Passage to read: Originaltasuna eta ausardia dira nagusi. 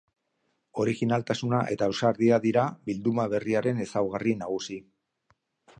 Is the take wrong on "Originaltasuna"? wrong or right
right